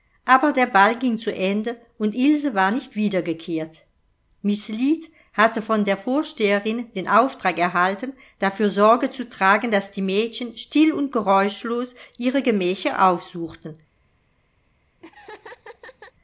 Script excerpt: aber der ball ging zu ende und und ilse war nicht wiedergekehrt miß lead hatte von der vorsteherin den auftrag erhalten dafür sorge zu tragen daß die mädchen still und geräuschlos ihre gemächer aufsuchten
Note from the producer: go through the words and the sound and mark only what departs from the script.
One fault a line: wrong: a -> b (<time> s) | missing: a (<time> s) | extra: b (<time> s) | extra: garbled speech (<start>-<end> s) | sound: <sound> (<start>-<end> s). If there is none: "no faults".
missing: und (2.2 s)
sound: laugh (15.0-16.1 s)